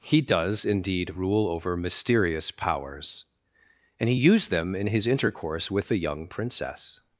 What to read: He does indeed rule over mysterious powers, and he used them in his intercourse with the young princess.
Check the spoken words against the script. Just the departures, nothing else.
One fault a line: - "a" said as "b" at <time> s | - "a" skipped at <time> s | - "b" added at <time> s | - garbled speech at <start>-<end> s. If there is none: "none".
none